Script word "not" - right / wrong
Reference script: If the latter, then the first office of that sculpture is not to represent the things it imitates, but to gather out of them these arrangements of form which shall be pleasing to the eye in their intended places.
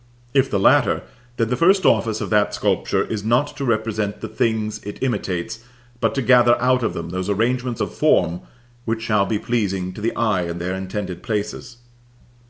right